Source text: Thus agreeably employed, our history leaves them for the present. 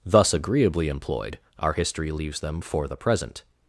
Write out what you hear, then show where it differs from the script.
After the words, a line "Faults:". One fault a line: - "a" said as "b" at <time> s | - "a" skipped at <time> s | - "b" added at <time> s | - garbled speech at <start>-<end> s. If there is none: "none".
Thus agreeably employed, our history leaves them for the present.
Faults:
none